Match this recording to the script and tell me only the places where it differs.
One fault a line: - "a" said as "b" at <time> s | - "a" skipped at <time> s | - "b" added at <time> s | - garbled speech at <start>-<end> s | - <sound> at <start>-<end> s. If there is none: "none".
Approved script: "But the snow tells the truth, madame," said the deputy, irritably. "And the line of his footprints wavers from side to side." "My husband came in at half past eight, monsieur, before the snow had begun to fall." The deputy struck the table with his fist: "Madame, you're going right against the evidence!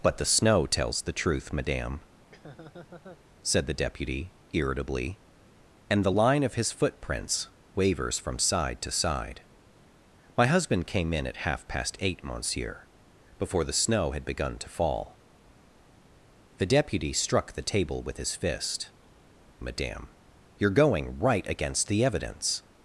- laugh at 2.2-3.2 s